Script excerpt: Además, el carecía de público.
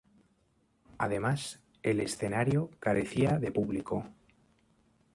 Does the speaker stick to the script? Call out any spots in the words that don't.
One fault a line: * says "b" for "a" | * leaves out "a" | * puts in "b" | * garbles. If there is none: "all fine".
* puts in "escenario"